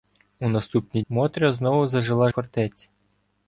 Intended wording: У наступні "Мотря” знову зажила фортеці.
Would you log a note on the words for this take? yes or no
no